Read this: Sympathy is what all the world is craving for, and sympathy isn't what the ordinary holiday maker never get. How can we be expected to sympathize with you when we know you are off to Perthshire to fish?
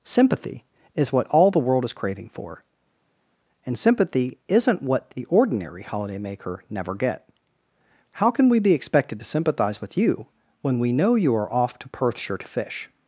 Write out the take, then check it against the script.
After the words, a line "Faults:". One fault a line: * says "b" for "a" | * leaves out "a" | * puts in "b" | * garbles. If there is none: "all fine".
Sympathy is what all the world is craving for, and sympathy isn't what the ordinary holiday maker never get. How can we be expected to sympathize with you when we know you are off to Perthshire to fish?
Faults:
all fine